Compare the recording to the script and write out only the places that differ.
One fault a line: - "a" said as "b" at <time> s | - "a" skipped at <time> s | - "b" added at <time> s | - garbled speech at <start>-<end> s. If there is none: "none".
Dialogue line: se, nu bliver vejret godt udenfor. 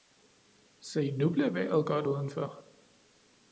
none